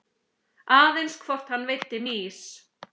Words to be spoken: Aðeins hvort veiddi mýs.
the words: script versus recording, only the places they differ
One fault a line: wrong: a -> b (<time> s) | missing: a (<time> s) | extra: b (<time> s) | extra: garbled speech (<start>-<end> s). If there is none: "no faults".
extra: hann (1.6 s)